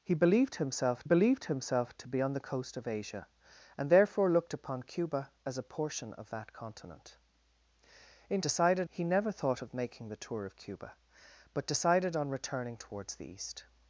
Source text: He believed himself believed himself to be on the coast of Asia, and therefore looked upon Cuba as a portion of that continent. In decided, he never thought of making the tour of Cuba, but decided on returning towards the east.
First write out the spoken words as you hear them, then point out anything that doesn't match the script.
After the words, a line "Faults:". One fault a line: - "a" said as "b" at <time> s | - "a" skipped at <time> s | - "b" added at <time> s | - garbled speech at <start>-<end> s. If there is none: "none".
He believed himself believed himself to be on the coast of Asia, and therefore looked upon Cuba as a portion of that continent. In decided, he never thought of making the tour of Cuba, but decided on returning towards the east.
Faults:
none